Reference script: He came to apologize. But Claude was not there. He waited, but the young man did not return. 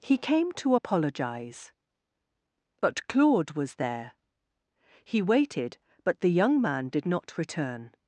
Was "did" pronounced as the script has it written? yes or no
yes